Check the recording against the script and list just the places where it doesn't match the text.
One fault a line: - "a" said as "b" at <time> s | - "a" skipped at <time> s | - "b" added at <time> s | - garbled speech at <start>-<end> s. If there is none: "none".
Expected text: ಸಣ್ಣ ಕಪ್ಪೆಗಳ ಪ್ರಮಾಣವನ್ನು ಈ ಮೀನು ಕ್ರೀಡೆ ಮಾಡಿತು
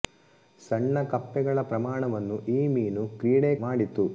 none